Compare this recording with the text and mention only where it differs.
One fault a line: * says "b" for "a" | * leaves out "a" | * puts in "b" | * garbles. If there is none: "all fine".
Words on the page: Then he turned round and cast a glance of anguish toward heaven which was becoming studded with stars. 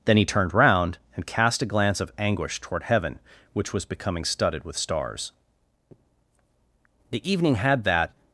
* puts in "The evening had that"